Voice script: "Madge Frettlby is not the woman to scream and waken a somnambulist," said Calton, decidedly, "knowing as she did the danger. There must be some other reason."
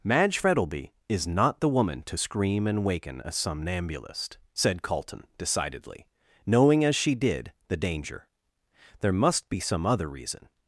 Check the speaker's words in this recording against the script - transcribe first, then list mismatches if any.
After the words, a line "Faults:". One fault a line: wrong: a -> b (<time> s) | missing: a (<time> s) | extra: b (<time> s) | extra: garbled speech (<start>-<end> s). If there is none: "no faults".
"Madge Frettlby is not the woman to scream and waken a somnambulist," said Calton, decidedly, "knowing as she did the danger. There must be some other reason."
Faults:
no faults